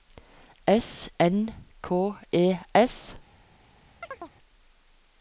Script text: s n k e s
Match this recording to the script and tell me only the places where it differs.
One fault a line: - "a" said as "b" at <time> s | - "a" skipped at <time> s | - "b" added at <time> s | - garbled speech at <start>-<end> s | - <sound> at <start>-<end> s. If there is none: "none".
- chirp at 4.0-4.3 s